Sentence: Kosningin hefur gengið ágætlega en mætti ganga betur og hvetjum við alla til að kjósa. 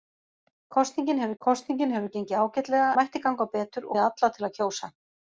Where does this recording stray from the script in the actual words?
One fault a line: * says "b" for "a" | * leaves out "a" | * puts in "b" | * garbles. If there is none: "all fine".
* puts in "kosningin hefur"
* leaves out "en"
* leaves out "og hvetjum"